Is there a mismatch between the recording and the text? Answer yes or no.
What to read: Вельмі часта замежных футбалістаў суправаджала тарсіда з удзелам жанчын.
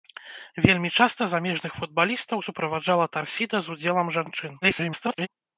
yes